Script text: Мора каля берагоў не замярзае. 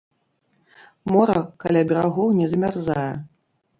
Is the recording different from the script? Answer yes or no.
no